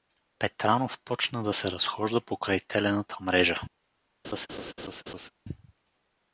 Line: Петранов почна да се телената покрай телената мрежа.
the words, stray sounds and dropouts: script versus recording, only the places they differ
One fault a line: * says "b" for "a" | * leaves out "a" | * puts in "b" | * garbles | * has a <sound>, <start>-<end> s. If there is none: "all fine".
* says "разхожда" for "телената"
* has a laugh, 4.2-5.3 s